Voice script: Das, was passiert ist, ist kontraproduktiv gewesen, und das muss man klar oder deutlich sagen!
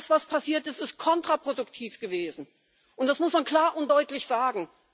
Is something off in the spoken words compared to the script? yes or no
yes